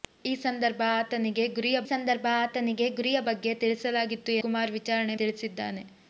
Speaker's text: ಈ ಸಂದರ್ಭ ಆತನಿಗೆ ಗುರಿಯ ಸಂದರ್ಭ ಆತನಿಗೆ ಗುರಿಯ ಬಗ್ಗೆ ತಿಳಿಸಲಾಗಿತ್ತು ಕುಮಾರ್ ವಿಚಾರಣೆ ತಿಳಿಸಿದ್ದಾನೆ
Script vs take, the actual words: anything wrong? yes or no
no